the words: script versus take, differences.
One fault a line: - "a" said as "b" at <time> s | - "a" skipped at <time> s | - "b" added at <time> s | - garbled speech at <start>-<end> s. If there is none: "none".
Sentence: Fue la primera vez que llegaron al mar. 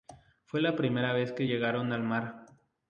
none